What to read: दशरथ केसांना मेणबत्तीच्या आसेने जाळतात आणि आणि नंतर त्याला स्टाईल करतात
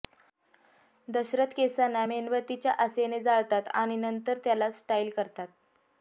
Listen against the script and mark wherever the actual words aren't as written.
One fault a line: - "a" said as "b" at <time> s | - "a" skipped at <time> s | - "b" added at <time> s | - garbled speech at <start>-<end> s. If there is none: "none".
- "आणि" skipped at 4.0 s